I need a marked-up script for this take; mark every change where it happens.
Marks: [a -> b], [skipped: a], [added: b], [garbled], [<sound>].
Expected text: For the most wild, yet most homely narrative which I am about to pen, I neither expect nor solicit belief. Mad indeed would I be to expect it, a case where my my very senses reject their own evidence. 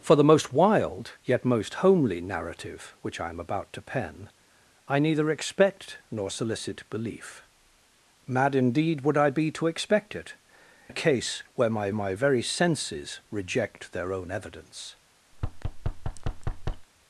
For the most wild, yet most homely narrative which I am about to pen, I neither expect nor solicit belief. Mad indeed would I be to expect it, a case where my my very senses reject their own evidence. [thud]